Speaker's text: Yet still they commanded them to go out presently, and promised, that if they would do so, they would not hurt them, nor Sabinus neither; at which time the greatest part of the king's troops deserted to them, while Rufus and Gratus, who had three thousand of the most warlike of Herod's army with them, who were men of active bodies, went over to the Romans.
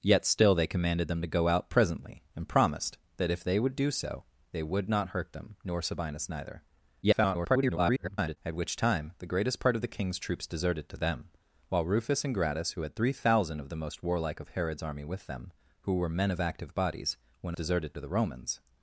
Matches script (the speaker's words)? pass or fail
fail